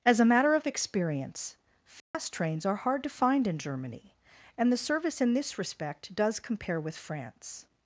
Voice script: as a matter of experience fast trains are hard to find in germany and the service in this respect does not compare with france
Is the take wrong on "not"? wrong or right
wrong